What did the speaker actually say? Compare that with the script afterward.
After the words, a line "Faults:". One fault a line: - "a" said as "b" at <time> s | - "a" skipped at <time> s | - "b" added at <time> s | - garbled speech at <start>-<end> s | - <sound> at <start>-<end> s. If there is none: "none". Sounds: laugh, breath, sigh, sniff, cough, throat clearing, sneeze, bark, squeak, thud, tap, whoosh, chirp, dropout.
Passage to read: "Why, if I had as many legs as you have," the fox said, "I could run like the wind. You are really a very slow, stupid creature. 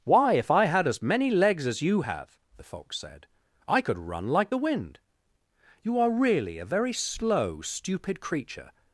"Why, if I had as many legs as you have," the fox said, "I could run like the wind. You are really a very slow, stupid creature.
Faults:
none